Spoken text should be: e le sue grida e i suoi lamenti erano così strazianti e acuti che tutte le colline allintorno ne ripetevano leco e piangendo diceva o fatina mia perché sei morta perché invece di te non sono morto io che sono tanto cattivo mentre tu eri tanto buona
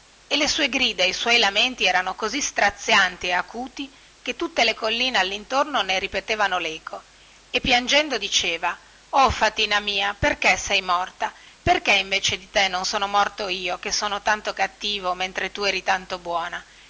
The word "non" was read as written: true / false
true